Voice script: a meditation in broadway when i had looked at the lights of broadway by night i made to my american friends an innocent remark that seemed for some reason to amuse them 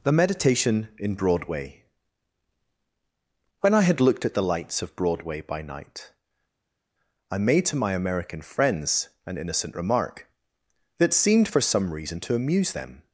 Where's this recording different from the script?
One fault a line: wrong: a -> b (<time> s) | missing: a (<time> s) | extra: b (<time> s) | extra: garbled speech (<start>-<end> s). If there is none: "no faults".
wrong: a -> the (0.0 s)